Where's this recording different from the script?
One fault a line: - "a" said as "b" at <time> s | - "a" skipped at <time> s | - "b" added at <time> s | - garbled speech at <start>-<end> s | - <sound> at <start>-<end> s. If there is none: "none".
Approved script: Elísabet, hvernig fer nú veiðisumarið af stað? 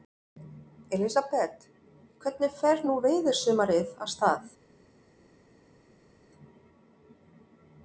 none